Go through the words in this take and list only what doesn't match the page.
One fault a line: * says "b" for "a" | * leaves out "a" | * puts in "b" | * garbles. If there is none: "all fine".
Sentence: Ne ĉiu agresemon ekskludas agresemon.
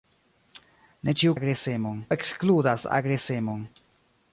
all fine